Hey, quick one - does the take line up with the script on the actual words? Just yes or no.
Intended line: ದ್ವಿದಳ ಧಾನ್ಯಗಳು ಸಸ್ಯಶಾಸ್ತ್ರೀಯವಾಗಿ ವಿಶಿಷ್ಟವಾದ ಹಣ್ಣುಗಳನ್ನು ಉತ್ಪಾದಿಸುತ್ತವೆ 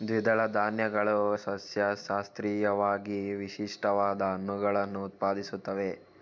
yes